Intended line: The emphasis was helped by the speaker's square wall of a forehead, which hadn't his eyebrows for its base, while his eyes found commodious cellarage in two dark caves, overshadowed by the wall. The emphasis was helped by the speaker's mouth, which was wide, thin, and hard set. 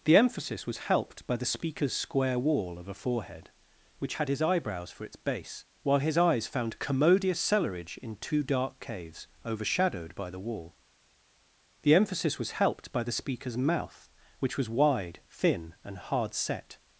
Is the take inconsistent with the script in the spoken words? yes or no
yes